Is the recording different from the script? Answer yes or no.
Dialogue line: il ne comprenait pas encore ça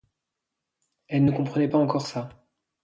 yes